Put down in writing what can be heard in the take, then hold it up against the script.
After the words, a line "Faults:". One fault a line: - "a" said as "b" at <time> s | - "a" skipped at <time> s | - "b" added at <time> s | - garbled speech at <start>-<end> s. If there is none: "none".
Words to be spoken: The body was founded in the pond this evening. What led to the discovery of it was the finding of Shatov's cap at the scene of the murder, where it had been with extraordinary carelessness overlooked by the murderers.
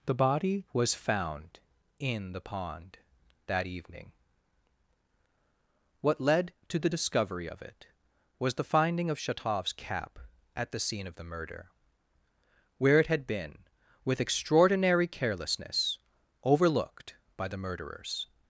The body was found in the pond that evening. What led to the discovery of it was the finding of Shatov's cap at the scene of the murder, where it had been with extraordinary carelessness overlooked by the murderers.
Faults:
- "founded" said as "found" at 0.9 s
- "this" said as "that" at 3.5 s